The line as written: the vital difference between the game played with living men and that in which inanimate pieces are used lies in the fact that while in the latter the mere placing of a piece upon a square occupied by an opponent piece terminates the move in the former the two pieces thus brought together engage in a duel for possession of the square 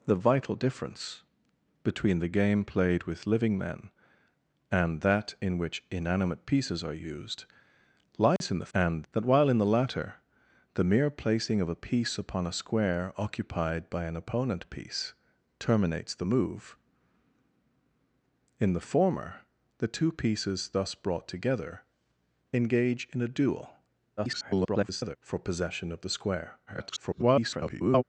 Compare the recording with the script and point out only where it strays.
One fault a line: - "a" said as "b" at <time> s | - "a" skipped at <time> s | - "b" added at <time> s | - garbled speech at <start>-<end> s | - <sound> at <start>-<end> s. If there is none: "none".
- dropout at 8.4-8.4 s
- "fact" said as "and" at 8.7 s
- garbled speech at 24.2-25.2 s
- garbled speech at 26.7-28.0 s